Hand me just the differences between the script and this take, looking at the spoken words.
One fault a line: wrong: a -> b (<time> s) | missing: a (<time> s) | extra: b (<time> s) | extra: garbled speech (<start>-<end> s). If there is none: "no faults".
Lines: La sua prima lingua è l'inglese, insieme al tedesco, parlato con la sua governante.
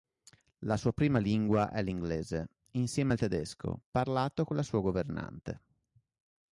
no faults